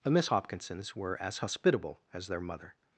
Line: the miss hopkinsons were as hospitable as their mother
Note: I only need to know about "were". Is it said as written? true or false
true